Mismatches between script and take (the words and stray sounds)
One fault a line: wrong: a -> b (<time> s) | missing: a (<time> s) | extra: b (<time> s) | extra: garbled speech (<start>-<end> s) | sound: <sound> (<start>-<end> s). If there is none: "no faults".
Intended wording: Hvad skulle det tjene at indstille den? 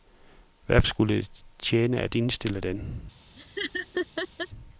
sound: laugh (3.4-4.5 s)